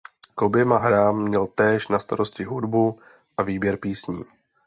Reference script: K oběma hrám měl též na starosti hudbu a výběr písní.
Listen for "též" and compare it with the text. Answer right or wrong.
right